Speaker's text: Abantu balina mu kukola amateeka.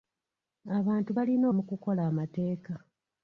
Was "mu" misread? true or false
false